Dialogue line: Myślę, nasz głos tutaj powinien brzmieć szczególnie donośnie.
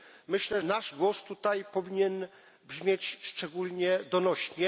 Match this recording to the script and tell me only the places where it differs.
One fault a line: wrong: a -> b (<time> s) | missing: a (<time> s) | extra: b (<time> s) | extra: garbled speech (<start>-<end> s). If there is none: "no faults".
no faults